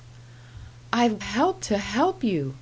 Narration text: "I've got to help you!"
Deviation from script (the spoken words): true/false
true